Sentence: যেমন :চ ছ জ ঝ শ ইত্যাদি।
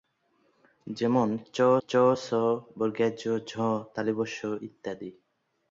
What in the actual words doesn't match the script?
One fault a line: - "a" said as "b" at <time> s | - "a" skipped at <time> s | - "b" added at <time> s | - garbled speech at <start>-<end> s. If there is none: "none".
- "চ" added at 1.8 s